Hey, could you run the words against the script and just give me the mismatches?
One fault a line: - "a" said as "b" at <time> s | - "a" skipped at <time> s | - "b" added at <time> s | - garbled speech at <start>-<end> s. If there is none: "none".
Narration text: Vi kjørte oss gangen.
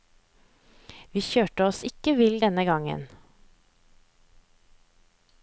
- "ikke vill denne" added at 1.9 s